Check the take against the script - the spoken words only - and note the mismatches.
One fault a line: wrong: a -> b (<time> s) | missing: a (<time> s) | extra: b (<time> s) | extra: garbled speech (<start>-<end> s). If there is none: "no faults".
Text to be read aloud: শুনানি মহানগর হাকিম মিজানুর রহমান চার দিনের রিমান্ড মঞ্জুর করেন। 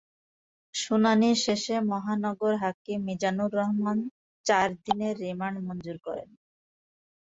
extra: শেষে (1.4 s)